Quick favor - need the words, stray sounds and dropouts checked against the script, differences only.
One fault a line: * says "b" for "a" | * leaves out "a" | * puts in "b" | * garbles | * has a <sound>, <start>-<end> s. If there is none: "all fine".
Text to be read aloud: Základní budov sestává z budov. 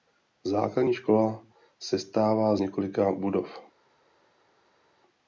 * says "škola" for "budov"
* puts in "několika"